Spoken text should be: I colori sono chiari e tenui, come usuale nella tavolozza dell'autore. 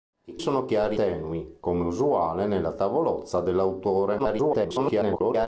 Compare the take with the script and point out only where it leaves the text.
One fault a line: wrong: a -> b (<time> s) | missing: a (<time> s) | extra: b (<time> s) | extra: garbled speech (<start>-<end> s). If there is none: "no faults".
missing: colori (0.4 s)
missing: e (1.0 s)
extra: garbled speech (4.2-5.5 s)